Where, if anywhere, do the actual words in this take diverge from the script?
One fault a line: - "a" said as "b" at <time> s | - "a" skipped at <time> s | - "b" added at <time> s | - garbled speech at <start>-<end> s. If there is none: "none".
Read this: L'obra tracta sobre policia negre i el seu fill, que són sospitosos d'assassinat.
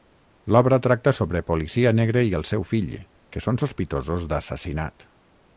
none